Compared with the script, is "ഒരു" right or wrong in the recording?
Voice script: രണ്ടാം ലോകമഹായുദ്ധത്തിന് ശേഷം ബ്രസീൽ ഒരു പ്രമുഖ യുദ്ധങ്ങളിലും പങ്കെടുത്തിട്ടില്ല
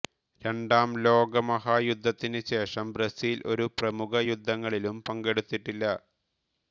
right